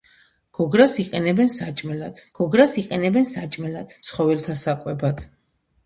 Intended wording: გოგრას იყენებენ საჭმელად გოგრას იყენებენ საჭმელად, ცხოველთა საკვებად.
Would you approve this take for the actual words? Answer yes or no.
yes